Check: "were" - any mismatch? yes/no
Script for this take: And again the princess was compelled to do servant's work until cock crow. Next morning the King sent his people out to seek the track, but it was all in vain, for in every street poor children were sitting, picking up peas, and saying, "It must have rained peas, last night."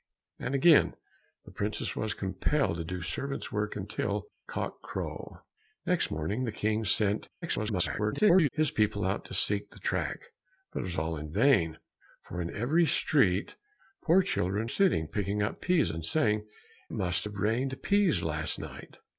yes